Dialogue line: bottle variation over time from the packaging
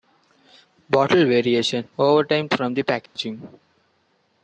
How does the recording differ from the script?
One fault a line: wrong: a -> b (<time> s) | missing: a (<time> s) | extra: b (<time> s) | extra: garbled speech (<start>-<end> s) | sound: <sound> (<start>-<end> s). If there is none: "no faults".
sound: dropout (3.1-3.2 s)